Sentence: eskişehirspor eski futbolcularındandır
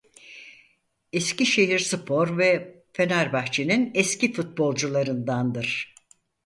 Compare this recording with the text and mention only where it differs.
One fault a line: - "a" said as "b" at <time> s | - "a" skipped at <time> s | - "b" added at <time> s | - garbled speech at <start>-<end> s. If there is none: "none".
- "ve fenerbahçe'nin" added at 2.4 s